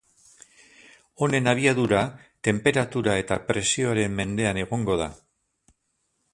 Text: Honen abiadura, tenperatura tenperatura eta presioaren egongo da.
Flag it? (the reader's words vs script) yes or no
yes